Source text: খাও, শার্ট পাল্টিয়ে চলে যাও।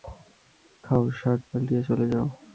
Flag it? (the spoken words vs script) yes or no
no